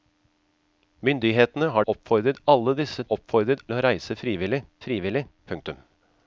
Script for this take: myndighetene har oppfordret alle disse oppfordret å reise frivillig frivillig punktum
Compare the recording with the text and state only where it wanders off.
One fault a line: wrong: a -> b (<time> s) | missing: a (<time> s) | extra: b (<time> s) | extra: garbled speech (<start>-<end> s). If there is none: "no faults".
no faults